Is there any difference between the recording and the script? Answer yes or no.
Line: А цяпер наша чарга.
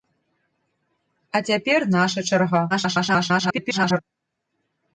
yes